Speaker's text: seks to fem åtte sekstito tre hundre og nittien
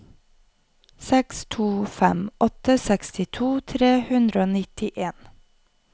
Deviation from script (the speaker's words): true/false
false